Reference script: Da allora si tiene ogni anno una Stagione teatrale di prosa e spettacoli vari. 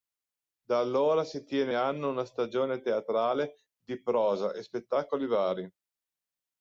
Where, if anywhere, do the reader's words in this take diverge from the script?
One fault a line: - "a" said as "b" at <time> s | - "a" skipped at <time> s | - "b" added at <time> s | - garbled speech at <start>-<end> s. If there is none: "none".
- "ogni" skipped at 1.7 s